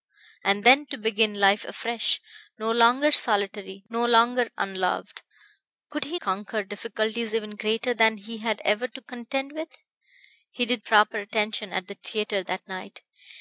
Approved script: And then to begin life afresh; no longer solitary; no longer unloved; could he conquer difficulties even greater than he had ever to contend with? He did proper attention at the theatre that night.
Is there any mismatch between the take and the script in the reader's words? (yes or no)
no